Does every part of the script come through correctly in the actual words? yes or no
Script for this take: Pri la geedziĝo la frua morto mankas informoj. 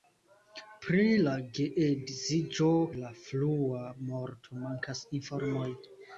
yes